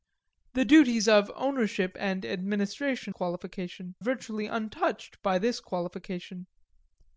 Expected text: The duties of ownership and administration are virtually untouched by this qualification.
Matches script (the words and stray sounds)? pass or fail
fail